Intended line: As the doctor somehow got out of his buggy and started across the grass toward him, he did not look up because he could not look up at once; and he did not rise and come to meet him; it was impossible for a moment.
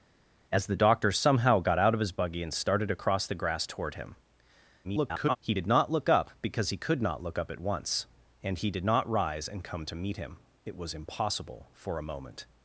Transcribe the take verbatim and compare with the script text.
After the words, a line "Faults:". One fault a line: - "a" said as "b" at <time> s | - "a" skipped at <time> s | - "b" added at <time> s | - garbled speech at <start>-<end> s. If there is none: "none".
As the doctor somehow got out of his buggy and started across the grass toward him, [garbled] he did not look up because he could not look up at once; and he did not rise and come to meet him; it was impossible for a moment.
Faults:
- garbled speech at 4.8-5.4 s